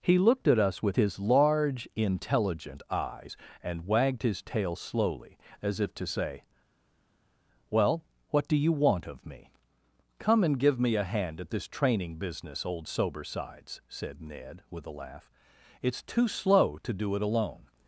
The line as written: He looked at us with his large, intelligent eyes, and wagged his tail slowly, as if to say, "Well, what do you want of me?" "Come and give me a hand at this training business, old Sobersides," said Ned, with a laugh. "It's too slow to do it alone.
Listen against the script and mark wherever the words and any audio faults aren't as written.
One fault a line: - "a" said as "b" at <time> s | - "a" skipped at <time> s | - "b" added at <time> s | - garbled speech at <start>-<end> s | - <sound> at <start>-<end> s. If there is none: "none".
none